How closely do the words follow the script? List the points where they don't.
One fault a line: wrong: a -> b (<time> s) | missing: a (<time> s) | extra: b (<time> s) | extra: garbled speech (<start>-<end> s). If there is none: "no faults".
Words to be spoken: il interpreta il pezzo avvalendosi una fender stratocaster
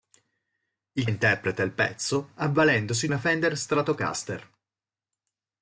no faults